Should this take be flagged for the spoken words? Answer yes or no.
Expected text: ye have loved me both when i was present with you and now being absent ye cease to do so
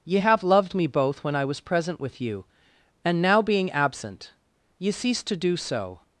no